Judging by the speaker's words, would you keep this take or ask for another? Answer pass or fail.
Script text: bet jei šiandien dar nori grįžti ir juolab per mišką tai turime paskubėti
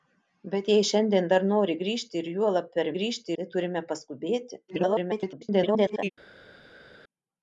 fail